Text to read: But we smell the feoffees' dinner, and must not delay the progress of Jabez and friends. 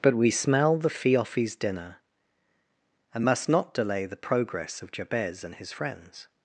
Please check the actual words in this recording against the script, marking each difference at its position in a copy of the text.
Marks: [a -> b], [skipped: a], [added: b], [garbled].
But we smell the feoffees' dinner, and must not delay the progress of Jabez and [added: his] friends.